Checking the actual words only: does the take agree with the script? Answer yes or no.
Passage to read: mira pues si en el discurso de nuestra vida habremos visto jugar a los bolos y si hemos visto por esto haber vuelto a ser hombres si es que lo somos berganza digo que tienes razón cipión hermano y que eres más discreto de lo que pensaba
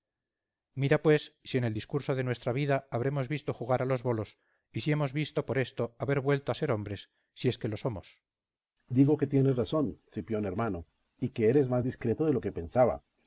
yes